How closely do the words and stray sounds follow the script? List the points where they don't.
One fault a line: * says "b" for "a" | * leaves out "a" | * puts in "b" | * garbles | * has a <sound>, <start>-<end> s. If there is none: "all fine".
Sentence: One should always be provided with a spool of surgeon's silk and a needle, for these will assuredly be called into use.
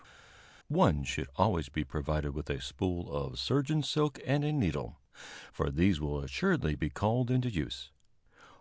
all fine